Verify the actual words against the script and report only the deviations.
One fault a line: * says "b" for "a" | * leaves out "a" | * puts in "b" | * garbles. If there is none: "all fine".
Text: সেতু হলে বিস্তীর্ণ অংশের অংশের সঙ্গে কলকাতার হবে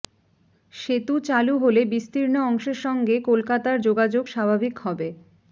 * puts in "চালু"
* leaves out "অংশের"
* puts in "যোগাযোগ স্বাভাবিক"